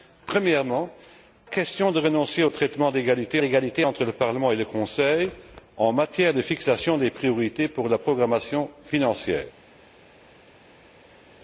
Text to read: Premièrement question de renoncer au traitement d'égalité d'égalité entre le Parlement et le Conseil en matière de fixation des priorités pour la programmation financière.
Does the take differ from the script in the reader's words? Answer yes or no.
no